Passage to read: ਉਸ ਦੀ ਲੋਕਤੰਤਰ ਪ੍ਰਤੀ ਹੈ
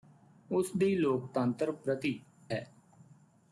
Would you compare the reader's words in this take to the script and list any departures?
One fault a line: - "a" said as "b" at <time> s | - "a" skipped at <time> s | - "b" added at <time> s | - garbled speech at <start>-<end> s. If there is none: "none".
none